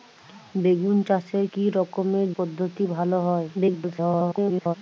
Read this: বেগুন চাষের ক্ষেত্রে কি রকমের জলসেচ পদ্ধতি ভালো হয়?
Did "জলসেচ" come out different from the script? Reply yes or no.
yes